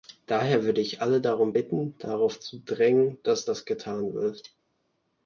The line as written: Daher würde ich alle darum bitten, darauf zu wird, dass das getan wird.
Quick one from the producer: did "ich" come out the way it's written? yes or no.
yes